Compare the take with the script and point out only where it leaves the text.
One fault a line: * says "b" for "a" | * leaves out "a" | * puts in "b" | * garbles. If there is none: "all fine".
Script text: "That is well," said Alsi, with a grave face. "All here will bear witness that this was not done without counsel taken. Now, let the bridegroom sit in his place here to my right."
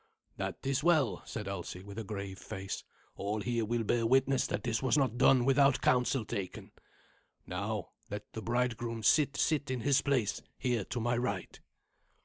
* puts in "sit"